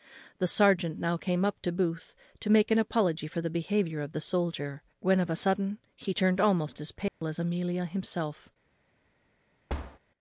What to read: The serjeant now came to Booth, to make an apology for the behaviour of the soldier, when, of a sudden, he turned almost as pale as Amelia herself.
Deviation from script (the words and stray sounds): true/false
true